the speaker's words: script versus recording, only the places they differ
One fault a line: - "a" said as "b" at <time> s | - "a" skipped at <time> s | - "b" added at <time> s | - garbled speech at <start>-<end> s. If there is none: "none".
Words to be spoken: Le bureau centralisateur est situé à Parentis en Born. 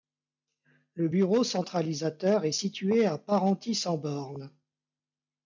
none